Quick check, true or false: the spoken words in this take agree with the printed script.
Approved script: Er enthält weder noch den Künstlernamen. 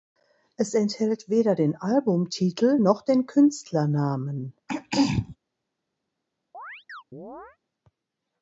false